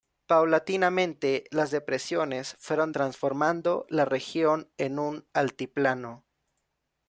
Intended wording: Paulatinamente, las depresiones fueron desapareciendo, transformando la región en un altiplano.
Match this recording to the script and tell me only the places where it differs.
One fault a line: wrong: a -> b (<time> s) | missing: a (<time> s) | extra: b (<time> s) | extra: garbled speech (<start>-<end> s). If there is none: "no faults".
missing: desapareciendo (2.9 s)